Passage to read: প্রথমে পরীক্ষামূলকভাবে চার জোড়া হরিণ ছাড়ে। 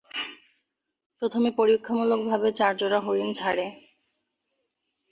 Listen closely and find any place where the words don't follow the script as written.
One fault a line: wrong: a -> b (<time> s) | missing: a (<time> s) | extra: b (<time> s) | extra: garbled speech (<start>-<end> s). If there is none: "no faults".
no faults